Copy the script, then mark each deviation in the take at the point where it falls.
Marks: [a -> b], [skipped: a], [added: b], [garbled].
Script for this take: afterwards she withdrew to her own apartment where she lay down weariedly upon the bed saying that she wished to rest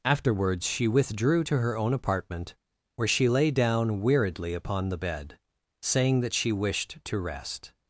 afterwards she withdrew to her own apartment where she lay down weariedly upon the bed saying that she wished to rest